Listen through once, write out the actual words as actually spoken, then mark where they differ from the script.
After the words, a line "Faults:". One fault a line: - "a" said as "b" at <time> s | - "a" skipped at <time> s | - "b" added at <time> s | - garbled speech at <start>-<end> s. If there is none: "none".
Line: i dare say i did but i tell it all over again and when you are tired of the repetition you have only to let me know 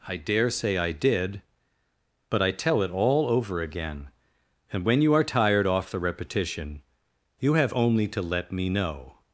i dare say i did but i tell it all over again and when you are tired off the repetition you have only to let me know
Faults:
- "of" said as "off" at 5.7 s